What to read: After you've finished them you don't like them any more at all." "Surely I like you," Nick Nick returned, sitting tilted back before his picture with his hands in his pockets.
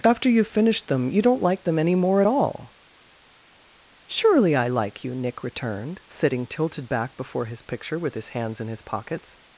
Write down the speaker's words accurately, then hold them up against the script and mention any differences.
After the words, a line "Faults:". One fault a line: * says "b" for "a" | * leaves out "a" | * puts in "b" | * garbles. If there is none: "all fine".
After you've finished them you don't like them any more at all." "Surely I like you," Nick returned, sitting tilted back before his picture with his hands in his pockets.
Faults:
* leaves out "Nick"